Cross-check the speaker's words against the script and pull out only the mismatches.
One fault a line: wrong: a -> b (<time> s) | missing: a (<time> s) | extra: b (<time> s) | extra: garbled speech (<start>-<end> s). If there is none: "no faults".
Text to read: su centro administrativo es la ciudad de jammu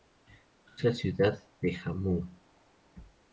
missing: centro administrativo es (0.8 s)